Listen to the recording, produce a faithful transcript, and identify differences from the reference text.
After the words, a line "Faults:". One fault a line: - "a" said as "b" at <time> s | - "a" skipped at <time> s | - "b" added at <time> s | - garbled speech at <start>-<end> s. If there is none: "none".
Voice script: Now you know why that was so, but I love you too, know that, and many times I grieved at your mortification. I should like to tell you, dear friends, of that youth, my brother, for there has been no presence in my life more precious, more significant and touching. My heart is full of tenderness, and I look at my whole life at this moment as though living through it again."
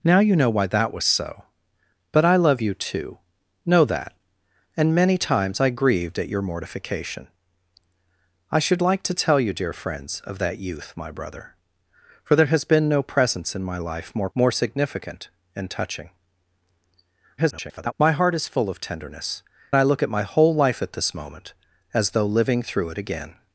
Now you know why that was so, but I love you too, know that, and many times I grieved at your mortification. I should like to tell you, dear friends, of that youth, my brother, for there has been no presence in my life more more significant and touching. [garbled] My heart is full of tenderness, I look at my whole life at this moment as though living through it again."
Faults:
- "precious" skipped at 14.3 s
- garbled speech at 17.4-17.9 s
- "and" skipped at 19.4 s